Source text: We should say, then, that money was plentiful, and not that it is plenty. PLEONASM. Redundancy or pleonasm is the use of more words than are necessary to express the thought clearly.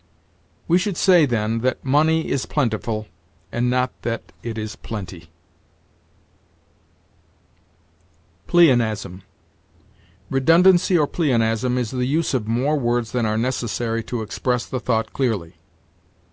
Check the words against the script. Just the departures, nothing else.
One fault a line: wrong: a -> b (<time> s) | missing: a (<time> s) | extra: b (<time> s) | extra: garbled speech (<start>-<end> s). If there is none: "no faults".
wrong: was -> is (2.3 s)